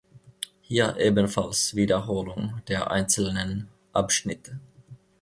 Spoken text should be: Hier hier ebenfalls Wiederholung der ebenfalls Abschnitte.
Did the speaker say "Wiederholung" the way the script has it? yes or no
yes